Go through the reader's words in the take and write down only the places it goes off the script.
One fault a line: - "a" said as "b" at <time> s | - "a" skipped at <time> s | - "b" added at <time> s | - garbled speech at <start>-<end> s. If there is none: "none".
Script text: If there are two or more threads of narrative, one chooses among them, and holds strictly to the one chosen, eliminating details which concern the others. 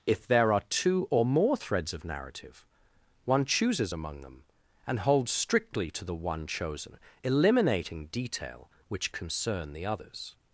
- "details" said as "detail" at 8.1 s